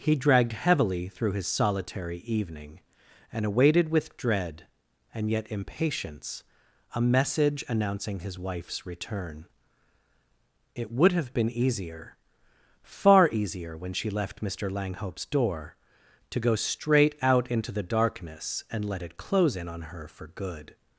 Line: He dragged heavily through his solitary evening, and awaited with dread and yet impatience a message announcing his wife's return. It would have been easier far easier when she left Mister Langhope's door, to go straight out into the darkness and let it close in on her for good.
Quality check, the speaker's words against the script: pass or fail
pass